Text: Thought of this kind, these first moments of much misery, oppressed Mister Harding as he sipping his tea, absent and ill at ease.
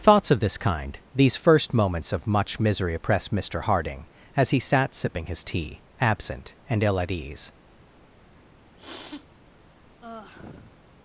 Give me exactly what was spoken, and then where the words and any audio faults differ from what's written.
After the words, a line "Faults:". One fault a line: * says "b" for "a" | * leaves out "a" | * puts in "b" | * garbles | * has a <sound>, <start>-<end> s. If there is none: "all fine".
Thoughts of this kind, these first moments of much misery, oppressed Mister Harding as he sat sipping his tea, absent and ill at ease.
Faults:
* says "Thoughts" for "Thought"
* puts in "sat"
* has a sniff, 8.8-9.3 s
* has a sigh, 10.0-10.8 s